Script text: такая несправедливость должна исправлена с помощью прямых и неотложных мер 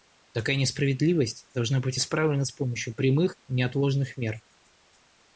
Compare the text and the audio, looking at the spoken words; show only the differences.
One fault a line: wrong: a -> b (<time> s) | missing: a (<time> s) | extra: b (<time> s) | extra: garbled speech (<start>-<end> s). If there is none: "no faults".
extra: быть (1.8 s)